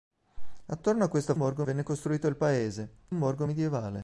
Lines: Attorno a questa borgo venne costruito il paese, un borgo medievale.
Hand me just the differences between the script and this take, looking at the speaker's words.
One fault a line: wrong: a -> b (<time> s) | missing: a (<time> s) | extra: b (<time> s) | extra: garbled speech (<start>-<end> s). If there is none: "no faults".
no faults